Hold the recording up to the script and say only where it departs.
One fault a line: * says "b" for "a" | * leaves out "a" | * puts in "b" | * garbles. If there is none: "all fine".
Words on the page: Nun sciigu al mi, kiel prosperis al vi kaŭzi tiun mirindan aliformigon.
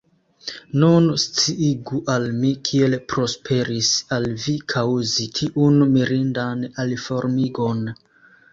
all fine